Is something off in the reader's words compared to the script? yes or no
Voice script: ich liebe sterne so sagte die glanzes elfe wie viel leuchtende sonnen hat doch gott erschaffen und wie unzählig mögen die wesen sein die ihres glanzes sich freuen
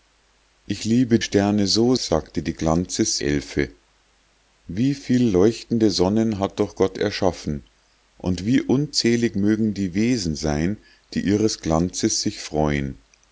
no